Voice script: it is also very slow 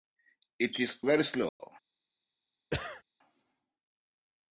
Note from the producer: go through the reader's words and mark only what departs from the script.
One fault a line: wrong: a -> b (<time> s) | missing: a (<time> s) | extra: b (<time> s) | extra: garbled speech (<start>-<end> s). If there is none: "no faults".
missing: also (1.0 s)